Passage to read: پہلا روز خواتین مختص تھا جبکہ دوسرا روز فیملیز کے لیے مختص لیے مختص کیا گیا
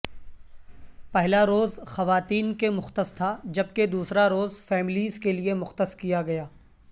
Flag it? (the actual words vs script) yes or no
yes